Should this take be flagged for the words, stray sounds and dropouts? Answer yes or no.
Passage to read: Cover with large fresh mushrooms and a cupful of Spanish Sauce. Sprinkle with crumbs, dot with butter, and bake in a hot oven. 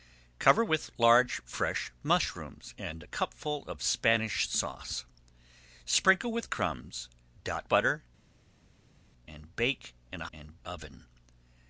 yes